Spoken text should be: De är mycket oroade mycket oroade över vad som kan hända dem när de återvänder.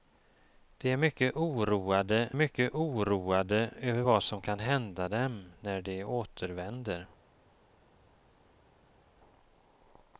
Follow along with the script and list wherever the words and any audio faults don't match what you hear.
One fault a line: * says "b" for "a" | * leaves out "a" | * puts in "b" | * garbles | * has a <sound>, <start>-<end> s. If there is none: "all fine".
all fine